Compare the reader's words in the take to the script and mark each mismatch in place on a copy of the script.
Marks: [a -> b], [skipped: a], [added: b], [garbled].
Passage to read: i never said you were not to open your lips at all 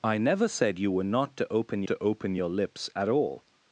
i never said you were not to open [added: to open] your lips at all